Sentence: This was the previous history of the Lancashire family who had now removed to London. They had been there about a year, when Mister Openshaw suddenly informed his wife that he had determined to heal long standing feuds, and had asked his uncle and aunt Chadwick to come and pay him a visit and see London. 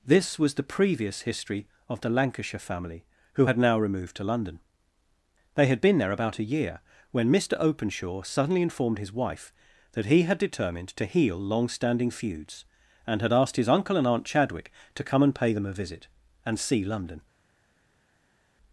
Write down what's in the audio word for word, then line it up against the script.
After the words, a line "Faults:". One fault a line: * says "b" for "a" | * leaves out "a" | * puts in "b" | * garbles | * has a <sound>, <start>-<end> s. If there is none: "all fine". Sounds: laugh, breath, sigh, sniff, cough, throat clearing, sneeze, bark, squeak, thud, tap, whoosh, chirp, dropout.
This was the previous history of the Lancashire family who had now removed to London. They had been there about a year, when Mister Openshaw suddenly informed his wife that he had determined to heal long standing feuds, and had asked his uncle and aunt Chadwick to come and pay them a visit and see London.
Faults:
* says "them" for "him"